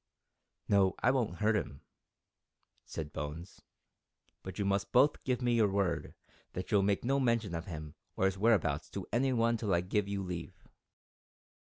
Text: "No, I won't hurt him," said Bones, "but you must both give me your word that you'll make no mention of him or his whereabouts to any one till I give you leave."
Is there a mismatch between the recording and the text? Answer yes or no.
no